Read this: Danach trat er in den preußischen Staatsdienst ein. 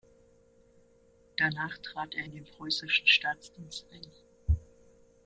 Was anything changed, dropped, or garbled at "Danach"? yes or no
no